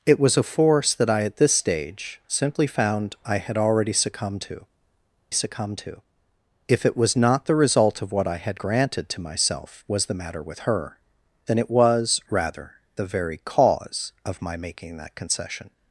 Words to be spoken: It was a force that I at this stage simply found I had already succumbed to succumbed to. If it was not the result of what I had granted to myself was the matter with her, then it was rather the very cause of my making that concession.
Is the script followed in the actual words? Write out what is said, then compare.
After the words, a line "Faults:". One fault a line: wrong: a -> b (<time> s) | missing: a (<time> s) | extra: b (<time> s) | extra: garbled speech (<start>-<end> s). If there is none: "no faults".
It was a force that I at this stage simply found I had already succumbed to succumbed to. If it was not the result of what I had granted to myself was the matter with her, then it was rather the very cause of my making that concession.
Faults:
no faults